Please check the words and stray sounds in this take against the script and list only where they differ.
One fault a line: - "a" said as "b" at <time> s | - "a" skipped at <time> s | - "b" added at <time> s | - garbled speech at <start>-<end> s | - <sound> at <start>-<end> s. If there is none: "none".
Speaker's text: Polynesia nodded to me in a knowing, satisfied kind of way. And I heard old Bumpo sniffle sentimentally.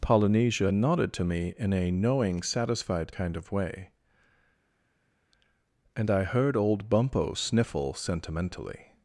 none